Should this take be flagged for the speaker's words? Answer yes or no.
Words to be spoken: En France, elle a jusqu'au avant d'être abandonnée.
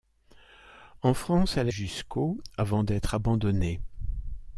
no